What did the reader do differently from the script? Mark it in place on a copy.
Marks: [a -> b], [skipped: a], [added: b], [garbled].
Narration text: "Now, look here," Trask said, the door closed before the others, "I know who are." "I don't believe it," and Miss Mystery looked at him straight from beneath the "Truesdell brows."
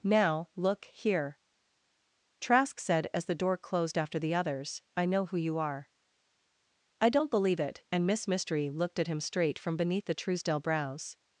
"Now, look here," Trask said, [added: as] the door closed [before -> after] the others, "I know who [added: you] are." "I don't believe it," and Miss Mystery looked at him straight from beneath the "Truesdell brows."